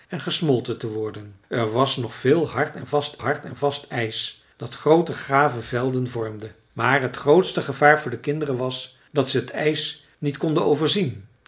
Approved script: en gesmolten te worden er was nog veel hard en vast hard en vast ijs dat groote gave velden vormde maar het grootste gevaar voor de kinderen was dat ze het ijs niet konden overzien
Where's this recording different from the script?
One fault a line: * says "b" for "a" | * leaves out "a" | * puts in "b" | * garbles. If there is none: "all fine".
all fine